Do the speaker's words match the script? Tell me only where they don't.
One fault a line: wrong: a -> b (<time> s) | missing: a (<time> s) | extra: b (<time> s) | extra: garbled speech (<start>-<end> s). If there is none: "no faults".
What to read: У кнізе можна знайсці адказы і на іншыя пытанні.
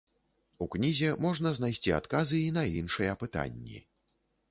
no faults